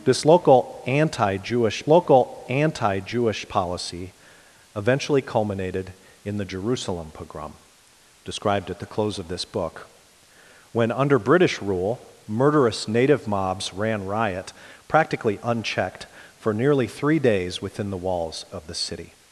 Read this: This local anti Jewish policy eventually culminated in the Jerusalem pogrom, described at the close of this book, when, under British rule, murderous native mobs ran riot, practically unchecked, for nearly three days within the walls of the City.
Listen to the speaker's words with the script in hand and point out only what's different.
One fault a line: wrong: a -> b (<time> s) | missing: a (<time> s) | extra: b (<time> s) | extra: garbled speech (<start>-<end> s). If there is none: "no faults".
extra: local anti Jewish (1.9 s)